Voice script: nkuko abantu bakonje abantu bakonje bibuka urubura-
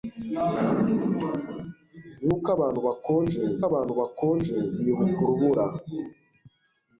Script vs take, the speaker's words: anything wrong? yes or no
no